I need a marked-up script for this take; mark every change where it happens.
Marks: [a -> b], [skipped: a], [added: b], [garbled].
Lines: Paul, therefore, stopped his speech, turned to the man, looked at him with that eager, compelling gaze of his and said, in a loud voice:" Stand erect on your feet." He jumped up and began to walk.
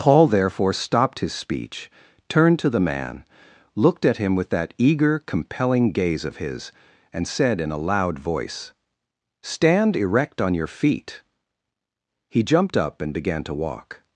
Paul, therefore, stopped his speech, turned to the man, looked at him with that eager, compelling gaze of his and said, in a loud voice:" Stand erect on your feet." He jumped up and began to walk.